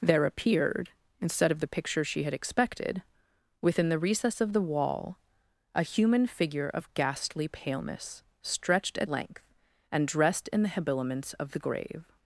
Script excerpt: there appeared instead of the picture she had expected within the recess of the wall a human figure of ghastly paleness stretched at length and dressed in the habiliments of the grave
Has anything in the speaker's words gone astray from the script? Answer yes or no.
no